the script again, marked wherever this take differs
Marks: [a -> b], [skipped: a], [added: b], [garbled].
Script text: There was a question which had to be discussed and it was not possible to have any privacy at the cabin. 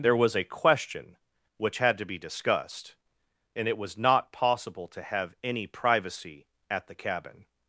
There was a question which had to be discussed and it was not possible to have any privacy at the cabin.